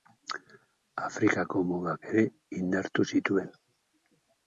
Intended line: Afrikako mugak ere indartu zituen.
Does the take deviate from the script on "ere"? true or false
false